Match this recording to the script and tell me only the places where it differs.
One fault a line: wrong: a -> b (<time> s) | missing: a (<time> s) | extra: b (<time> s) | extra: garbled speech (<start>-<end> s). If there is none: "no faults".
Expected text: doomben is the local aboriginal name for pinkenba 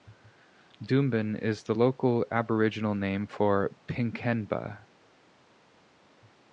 no faults